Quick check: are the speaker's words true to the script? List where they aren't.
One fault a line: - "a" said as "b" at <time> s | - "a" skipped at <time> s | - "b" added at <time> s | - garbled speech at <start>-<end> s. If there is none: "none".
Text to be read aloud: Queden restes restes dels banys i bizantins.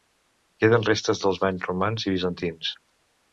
- "restes" skipped at 1.2 s
- "romans" added at 1.7 s